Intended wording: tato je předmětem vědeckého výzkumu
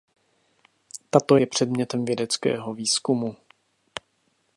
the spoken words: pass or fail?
pass